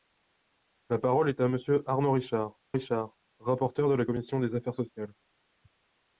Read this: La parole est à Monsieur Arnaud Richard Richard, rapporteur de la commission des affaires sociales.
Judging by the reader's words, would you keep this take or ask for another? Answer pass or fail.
pass